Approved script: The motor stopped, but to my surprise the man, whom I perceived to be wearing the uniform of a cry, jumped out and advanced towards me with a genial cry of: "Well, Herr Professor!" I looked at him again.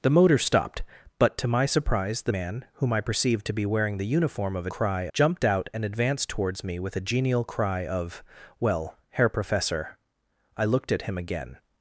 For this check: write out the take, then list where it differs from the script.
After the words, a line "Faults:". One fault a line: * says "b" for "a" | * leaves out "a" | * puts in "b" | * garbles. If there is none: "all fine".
The motor stopped, but to my surprise the man, whom I perceived to be wearing the uniform of a cry, jumped out and advanced towards me with a genial cry of: "Well, Herr Professor!" I looked at him again.
Faults:
all fine